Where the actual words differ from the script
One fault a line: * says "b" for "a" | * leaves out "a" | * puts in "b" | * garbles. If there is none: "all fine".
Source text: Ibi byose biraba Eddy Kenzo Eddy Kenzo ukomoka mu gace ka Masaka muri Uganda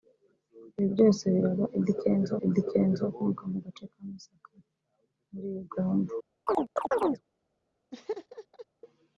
all fine